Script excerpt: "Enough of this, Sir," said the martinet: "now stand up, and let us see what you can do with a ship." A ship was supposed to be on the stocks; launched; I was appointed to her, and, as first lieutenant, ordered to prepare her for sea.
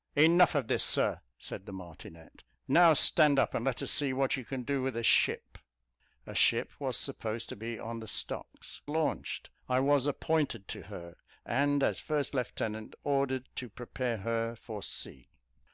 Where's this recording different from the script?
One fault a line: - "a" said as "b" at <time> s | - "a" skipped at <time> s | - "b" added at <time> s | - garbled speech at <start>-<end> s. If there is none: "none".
none